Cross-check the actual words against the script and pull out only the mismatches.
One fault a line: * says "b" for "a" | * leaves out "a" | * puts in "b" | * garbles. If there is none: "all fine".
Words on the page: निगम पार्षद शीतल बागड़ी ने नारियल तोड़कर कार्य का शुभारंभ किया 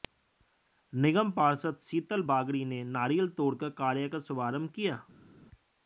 all fine